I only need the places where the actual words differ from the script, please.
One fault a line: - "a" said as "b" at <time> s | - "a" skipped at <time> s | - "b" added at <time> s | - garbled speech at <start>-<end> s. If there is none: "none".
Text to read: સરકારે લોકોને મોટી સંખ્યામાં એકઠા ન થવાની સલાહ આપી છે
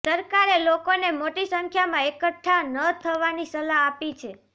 none